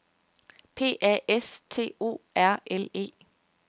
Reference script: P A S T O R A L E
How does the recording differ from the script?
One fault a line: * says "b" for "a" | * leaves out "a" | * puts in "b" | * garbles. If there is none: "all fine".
* leaves out "A"